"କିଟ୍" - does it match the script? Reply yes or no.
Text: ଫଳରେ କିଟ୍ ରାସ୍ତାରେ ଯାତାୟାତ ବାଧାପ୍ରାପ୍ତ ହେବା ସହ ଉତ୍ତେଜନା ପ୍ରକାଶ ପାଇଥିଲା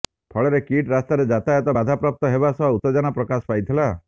yes